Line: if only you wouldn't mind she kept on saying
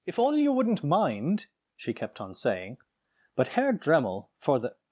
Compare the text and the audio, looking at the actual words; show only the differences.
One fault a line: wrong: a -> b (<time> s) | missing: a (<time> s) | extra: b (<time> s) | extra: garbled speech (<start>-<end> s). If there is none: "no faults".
extra: but herr dremmel for the (3.4 s)